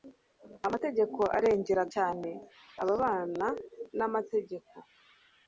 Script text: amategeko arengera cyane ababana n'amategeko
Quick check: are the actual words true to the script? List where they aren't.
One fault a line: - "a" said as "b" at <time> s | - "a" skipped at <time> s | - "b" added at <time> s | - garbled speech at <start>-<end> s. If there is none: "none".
none